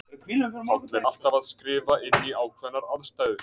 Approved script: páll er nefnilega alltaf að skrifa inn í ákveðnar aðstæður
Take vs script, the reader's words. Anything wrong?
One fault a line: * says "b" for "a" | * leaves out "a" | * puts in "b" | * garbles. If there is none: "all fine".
* leaves out "nefnilega"